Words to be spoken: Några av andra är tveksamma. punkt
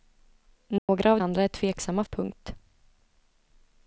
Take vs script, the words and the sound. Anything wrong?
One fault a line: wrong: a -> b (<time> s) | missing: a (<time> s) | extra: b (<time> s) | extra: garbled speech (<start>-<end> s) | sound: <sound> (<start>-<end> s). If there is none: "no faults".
sound: dropout (0.8-0.9 s)